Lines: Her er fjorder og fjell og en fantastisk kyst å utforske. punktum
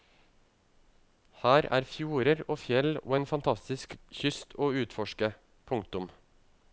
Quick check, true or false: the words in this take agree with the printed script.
true